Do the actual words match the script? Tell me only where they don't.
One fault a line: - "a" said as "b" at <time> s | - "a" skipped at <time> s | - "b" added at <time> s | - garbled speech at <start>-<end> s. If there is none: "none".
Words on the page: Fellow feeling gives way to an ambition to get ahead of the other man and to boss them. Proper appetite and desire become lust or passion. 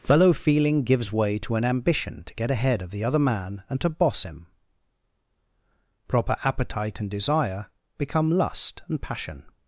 - "them" said as "him" at 4.2 s
- "or" said as "and" at 8.9 s